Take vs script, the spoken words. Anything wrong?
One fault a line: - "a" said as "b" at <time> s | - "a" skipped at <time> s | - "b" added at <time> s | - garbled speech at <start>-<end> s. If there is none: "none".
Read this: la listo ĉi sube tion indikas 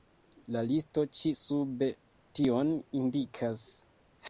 none